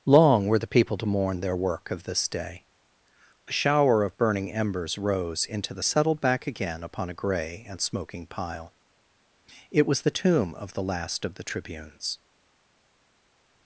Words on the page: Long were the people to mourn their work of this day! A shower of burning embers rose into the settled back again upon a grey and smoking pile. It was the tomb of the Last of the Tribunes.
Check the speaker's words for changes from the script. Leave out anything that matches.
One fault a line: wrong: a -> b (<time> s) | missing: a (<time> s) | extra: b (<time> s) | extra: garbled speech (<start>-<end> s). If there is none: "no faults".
no faults